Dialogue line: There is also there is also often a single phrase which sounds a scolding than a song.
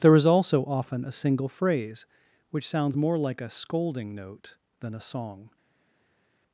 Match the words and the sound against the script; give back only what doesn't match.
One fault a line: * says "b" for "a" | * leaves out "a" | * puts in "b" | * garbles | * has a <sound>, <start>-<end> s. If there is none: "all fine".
* leaves out "there is also"
* puts in "more like"
* puts in "note"